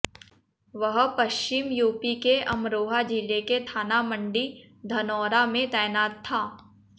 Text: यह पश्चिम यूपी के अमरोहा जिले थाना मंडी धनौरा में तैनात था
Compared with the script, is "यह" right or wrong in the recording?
wrong